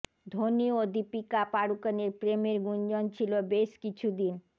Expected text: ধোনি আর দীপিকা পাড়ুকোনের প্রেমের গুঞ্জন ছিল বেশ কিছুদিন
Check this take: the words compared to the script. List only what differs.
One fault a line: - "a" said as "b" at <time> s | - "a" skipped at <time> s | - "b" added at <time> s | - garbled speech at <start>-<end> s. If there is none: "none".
- "আর" said as "ও" at 0.7 s